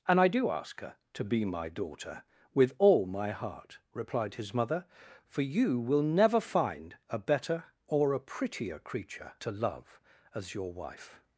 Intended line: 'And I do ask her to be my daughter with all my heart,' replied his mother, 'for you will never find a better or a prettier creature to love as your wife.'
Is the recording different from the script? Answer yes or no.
no